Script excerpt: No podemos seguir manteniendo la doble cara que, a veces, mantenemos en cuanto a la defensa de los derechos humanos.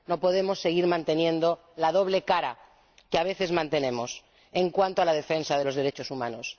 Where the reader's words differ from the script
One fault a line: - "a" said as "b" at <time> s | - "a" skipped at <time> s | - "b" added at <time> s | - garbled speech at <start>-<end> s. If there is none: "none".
none